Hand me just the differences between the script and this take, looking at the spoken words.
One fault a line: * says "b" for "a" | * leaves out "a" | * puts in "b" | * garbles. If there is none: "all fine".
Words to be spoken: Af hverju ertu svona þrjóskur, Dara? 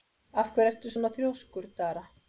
all fine